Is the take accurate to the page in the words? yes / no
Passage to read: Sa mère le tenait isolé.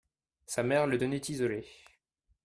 yes